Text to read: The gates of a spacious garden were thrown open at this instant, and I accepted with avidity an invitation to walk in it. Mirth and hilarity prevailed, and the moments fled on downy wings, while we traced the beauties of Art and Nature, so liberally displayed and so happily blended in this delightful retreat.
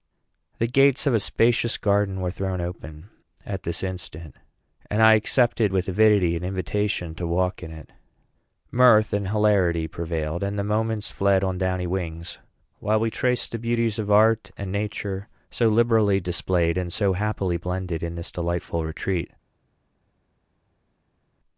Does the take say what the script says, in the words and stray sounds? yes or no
yes